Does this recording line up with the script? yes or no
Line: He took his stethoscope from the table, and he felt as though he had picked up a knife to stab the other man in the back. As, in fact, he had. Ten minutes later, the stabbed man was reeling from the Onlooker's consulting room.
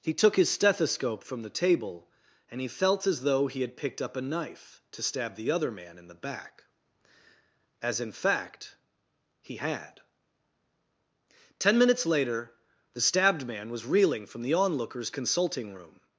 yes